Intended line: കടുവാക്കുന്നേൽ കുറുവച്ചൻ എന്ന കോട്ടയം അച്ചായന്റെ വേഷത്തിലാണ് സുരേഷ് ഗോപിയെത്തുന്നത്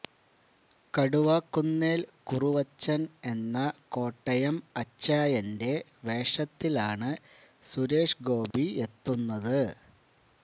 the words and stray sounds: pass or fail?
fail